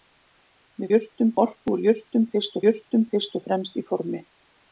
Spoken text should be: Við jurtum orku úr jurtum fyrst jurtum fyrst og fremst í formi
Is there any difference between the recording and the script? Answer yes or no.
no